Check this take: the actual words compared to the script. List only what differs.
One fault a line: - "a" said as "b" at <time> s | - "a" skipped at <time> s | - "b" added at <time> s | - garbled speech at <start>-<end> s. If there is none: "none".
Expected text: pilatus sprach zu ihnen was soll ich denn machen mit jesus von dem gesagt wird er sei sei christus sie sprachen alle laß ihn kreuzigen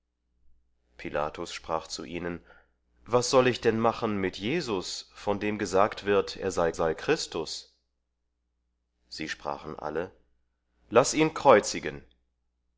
none